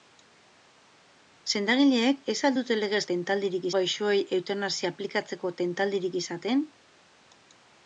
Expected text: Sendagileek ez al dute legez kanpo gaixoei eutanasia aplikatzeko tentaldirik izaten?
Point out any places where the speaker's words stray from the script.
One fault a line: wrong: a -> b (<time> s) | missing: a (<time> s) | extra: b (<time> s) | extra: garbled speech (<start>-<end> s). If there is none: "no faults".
wrong: kanpo -> tentaldirik (3.1 s)